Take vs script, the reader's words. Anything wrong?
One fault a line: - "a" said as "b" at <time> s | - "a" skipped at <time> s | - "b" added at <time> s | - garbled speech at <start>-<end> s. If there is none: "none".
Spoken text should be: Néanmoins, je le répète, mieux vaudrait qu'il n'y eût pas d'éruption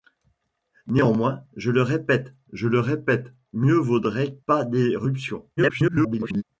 - "mieux vaudrait qu'il n'y eût" said as "je le répète mieux vaudrait" at 2.5 s
- garbled speech at 5.6-6.4 s